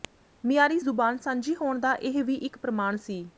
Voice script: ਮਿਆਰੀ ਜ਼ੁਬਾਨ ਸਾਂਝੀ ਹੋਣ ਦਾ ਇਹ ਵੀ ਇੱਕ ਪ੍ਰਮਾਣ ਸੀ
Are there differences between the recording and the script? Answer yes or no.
no